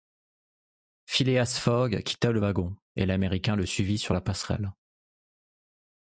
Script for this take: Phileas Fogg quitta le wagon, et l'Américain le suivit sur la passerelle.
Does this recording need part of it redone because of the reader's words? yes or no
no